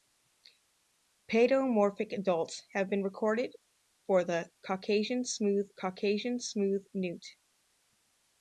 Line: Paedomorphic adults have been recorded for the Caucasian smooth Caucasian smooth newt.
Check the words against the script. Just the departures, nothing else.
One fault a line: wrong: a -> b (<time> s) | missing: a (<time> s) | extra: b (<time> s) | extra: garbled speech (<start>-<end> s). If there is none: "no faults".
no faults